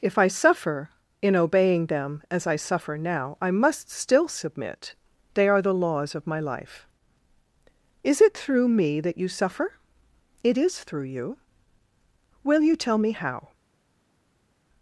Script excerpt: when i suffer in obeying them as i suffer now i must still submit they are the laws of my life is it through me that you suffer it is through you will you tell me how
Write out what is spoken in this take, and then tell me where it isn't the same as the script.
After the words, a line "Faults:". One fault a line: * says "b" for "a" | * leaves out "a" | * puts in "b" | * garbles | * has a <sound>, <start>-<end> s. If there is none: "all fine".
if i suffer in obeying them as i suffer now i must still submit they are the laws of my life is it through me that you suffer it is through you will you tell me how
Faults:
* says "if" for "when"